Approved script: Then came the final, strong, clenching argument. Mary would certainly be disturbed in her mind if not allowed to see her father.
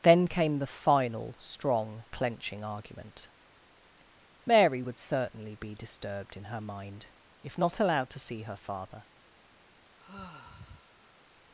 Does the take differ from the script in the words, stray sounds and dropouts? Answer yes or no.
yes